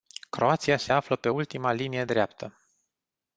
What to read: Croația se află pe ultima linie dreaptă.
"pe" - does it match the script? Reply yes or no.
yes